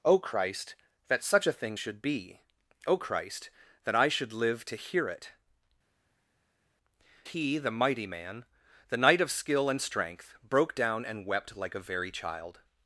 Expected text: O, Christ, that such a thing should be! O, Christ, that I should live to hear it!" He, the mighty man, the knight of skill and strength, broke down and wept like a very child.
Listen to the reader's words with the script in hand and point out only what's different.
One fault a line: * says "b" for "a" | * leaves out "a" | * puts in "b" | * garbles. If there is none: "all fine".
all fine